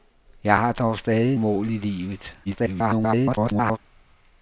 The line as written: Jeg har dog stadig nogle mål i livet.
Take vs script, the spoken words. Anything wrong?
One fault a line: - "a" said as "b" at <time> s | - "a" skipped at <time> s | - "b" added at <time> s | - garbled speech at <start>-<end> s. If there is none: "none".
- "nogle" skipped at 1.4 s
- garbled speech at 2.4-3.8 s